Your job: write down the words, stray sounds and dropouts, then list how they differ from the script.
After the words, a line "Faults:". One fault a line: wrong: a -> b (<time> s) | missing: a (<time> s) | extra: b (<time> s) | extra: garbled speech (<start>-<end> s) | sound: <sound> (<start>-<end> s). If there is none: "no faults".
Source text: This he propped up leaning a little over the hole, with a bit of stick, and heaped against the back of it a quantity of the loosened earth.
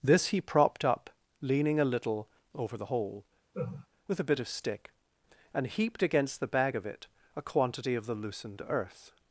This he propped up leaning a little over the hole, with a bit of stick, and heaped against the bag of it a quantity of the loosened earth.
Faults:
sound: laugh (3.5-3.9 s)
wrong: back -> bag (6.5 s)